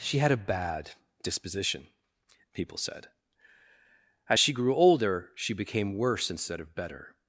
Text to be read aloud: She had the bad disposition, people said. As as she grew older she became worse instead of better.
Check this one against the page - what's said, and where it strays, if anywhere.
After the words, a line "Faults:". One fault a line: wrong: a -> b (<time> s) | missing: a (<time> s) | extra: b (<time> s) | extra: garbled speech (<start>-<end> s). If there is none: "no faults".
She had a bad disposition, people said. As she grew older she became worse instead of better.
Faults:
wrong: the -> a (0.3 s)
missing: as (4.4 s)